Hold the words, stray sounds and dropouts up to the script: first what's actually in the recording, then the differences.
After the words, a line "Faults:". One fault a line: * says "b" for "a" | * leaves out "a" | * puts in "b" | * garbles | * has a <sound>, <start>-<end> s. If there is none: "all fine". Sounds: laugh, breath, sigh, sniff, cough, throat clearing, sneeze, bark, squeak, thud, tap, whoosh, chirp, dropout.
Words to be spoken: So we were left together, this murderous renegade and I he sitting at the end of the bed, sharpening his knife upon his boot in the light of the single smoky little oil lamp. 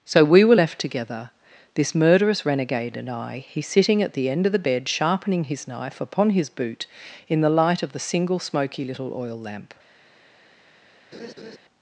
So we were left together, this murderous renegade and I he sitting at the end of the bed, sharpening his knife upon his boot in the light of the single smoky little oil lamp.
Faults:
* has a laugh, 11.1-11.6 s